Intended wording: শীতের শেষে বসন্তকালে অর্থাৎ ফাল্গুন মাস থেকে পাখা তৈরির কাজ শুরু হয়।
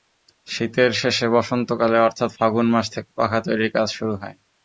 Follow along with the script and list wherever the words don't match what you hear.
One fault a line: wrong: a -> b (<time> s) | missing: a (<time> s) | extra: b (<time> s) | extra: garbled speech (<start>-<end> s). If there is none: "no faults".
no faults